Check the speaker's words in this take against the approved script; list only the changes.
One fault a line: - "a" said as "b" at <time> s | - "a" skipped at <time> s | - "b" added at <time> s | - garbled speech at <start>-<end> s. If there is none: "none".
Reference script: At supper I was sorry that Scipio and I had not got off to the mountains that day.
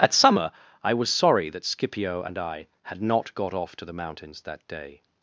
- "supper" said as "summer" at 0.1 s